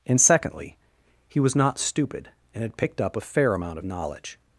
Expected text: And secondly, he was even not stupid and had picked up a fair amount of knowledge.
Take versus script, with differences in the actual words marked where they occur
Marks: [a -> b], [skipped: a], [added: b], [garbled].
And secondly, he was [skipped: even] not stupid and had picked up a fair amount of knowledge.